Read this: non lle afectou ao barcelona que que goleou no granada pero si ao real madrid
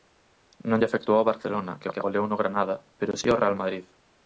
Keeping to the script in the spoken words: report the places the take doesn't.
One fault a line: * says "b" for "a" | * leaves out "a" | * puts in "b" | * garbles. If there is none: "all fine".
all fine